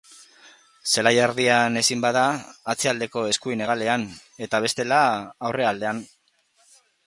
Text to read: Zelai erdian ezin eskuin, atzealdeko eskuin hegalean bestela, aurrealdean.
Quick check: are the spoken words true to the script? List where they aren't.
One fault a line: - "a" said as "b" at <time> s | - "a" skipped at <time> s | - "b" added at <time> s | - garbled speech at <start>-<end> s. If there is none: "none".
- "eskuin" said as "bada" at 2.0 s
- "eta" added at 4.5 s